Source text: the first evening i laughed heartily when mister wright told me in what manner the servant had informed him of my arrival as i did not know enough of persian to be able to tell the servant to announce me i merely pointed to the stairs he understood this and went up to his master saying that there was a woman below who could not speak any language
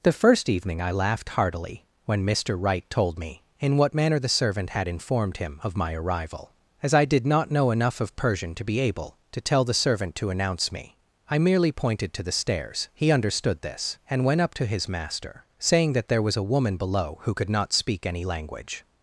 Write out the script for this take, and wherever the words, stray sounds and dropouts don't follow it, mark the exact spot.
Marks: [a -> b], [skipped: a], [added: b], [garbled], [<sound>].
the first evening i laughed heartily when mister wright told me in what manner the servant had informed him of my arrival as i did not know enough of persian to be able to tell the servant to announce me i merely pointed to the stairs he understood this and went up to his master saying that there was a woman below who could not speak any language